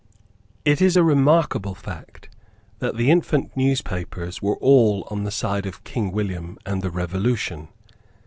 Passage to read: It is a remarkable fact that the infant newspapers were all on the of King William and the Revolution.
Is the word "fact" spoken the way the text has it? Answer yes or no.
yes